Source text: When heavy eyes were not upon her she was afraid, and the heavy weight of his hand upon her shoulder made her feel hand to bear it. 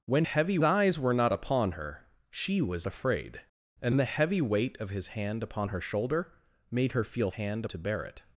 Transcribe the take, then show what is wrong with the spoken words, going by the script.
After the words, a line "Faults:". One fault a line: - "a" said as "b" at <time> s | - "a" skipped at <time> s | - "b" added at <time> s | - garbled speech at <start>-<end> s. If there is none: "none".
When heavy eyes were not upon her she was afraid, and the heavy weight of his hand upon her shoulder made her feel hand to bear it.
Faults:
none